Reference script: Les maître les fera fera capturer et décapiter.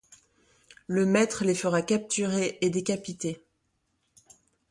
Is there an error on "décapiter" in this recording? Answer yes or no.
no